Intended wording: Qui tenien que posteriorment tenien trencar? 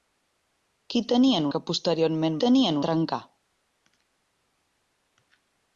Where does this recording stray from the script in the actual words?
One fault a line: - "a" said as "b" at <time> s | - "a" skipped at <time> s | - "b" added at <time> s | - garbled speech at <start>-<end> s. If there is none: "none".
none